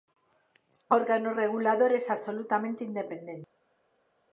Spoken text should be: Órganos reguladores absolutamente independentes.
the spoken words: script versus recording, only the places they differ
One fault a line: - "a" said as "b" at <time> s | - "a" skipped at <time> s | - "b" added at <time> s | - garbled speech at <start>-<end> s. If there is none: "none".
none